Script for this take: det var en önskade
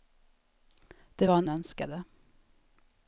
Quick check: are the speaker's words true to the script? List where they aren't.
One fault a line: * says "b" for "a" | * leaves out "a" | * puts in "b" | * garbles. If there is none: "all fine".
all fine